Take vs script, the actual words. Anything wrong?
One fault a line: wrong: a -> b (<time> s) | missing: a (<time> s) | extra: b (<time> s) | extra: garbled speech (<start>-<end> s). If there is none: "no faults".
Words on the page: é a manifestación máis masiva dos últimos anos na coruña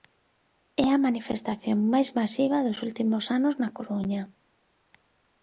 no faults